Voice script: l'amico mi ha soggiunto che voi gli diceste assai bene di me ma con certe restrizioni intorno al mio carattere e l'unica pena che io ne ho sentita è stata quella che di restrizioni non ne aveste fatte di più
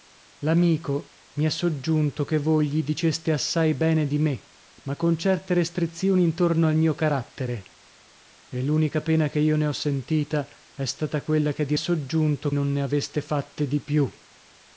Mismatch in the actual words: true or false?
true